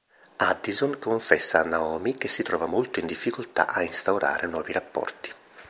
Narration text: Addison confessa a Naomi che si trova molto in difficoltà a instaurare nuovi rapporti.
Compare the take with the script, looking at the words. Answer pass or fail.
pass